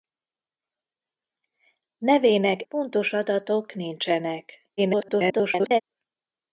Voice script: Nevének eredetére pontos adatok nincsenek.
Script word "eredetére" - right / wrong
wrong